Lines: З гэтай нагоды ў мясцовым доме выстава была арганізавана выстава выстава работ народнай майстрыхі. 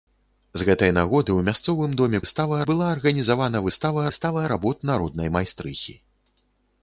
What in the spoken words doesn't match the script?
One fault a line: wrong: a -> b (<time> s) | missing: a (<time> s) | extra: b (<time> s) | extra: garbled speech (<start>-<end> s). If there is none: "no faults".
no faults